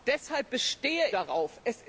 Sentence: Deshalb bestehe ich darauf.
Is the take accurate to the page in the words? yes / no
no